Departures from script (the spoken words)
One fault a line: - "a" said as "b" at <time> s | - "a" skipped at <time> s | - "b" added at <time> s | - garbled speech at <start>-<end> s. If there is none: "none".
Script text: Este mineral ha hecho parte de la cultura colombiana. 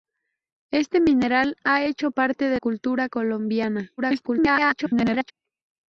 - "la" skipped at 2.6 s
- garbled speech at 4.0-5.3 s